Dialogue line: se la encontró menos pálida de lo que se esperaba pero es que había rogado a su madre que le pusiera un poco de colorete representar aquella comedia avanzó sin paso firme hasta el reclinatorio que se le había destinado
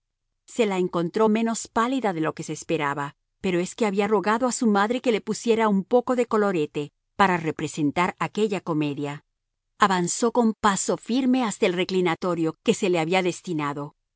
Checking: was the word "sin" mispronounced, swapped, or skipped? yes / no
yes